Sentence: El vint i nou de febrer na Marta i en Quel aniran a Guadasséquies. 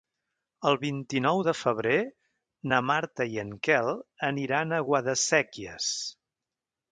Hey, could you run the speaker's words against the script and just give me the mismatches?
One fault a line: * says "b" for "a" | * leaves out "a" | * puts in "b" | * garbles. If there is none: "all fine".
all fine